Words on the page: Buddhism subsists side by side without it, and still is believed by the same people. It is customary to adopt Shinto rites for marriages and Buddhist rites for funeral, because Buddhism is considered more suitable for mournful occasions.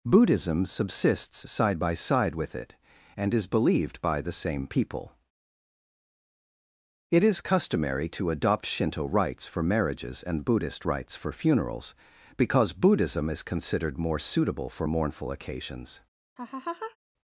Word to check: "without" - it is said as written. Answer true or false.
false